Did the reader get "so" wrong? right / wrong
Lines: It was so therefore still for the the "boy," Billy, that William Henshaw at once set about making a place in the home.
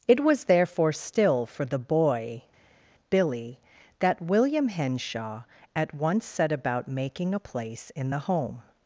wrong